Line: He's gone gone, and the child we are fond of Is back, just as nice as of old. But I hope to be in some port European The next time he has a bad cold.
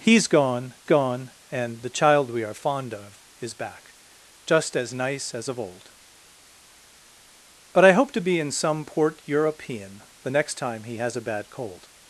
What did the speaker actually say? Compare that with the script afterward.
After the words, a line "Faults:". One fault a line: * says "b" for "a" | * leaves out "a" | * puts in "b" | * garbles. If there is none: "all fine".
He's gone gone, and the child we are fond of Is back, just as nice as of old. But I hope to be in some port European The next time he has a bad cold.
Faults:
all fine